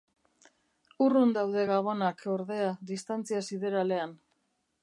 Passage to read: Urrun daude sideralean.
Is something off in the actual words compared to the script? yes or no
yes